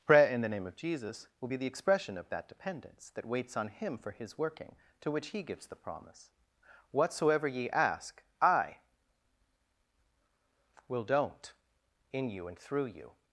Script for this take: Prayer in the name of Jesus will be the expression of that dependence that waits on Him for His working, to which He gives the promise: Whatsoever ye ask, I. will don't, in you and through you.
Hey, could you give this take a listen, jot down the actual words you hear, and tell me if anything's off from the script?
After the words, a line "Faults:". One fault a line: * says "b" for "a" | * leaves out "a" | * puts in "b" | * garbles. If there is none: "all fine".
Prayer in the name of Jesus will be the expression of that dependence that waits on Him for His working, to which He gives the promise: Whatsoever ye ask, I. will don't, in you and through you.
Faults:
all fine